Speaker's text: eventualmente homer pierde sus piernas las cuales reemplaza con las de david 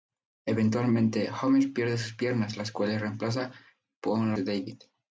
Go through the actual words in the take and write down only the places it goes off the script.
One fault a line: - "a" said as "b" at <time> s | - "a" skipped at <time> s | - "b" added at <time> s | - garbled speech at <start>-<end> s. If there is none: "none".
- "las" skipped at 4.3 s